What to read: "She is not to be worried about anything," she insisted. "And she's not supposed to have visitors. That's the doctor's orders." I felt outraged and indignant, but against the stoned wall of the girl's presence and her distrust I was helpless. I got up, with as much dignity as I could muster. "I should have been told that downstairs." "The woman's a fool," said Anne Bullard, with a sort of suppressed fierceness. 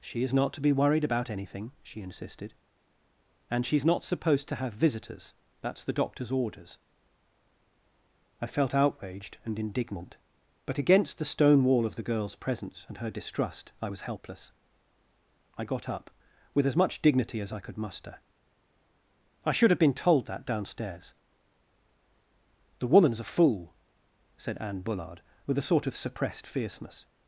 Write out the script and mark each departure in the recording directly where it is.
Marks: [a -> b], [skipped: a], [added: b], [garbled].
"She is not to be worried about anything," she insisted. "And she's not supposed to have visitors. That's the doctor's orders." I felt outraged and indignant, but against the [stoned -> stone] wall of the girl's presence and her distrust I was helpless. I got up, with as much dignity as I could muster. "I should have been told that downstairs." "The woman's a fool," said Anne Bullard, with a sort of suppressed fierceness.